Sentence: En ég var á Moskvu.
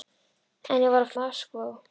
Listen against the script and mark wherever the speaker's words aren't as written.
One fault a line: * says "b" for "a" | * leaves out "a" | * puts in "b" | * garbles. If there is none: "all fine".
all fine